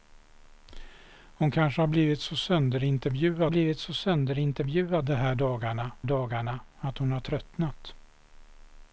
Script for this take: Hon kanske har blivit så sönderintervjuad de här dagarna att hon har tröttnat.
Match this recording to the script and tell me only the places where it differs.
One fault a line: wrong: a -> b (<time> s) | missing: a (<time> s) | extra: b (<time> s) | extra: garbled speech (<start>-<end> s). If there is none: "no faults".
extra: blivit så sönderintervjuad (3.5 s)
extra: dagarna (6.0 s)